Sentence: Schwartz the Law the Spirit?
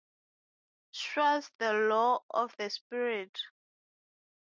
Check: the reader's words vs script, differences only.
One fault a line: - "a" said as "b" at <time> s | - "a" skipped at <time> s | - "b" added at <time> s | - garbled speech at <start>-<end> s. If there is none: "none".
- "of" added at 2.3 s